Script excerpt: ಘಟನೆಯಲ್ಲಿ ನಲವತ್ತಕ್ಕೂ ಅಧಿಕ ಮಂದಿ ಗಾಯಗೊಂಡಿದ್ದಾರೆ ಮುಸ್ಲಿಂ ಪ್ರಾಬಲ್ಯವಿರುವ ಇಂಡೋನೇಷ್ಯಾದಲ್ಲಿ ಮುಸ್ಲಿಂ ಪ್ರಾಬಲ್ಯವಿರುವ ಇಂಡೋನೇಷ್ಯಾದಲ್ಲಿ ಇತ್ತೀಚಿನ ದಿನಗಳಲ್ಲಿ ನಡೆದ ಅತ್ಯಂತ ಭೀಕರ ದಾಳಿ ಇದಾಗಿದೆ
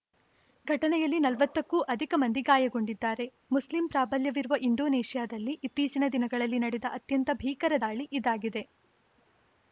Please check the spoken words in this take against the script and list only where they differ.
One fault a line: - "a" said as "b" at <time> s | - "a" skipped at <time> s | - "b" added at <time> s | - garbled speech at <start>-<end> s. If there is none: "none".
- "ಮುಸ್ಲಿಂ ಪ್ರಾಬಲ್ಯವಿರುವ ಇಂಡೋನೇಷ್ಯಾದಲ್ಲಿ" skipped at 5.5 s